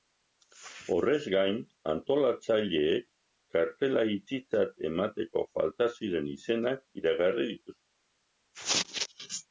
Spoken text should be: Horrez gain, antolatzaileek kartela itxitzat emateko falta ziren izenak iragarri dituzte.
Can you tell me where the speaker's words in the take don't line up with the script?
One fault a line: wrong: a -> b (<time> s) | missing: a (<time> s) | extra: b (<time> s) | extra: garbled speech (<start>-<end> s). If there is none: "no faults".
no faults